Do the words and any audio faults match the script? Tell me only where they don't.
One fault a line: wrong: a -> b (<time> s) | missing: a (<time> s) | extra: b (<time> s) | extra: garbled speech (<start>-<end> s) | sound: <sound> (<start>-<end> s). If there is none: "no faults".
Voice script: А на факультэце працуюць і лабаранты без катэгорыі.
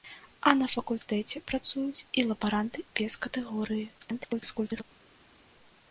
extra: garbled speech (4.0-4.8 s)